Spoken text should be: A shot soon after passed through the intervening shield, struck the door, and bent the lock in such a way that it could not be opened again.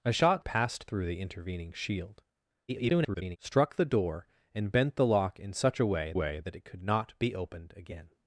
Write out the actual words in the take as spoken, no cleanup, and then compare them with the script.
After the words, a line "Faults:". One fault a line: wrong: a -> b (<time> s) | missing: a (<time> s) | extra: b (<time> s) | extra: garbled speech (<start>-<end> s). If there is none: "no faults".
A shot passed through the intervening shield, [garbled] struck the door, and bent the lock in such a way way that it could not be opened again.
Faults:
missing: soon after (0.5 s)
extra: garbled speech (2.7-3.4 s)
extra: way (6.1 s)